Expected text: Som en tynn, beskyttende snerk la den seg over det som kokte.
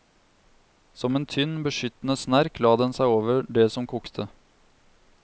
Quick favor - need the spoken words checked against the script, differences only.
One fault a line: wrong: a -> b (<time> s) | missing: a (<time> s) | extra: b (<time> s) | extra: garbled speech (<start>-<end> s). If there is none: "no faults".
no faults